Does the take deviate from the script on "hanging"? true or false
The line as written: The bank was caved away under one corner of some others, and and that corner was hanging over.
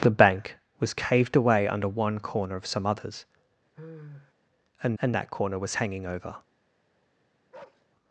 false